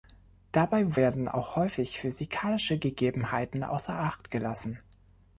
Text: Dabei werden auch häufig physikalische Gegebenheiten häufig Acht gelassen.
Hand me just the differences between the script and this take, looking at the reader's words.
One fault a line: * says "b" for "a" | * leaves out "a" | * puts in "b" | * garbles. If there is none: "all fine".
* says "außer" for "häufig"